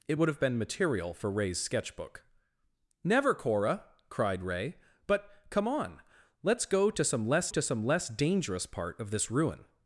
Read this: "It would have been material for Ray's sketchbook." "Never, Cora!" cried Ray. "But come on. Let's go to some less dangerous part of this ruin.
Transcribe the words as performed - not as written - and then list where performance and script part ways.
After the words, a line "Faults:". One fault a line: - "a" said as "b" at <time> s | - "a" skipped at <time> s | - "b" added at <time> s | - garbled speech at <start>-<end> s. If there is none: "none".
"It would have been material for Ray's sketchbook." "Never, Cora!" cried Ray. "But come on. Let's go to some less to some less dangerous part of this ruin.
Faults:
- "to some less" added at 7.5 s